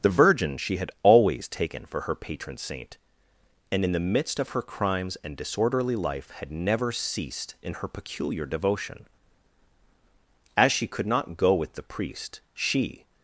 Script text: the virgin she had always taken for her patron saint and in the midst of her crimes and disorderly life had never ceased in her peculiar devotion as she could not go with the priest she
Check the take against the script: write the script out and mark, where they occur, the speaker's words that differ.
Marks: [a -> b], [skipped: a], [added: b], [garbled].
the virgin she had always taken for her patron saint and in the midst of her crimes and disorderly life had never ceased in her peculiar devotion as she could not go with the priest she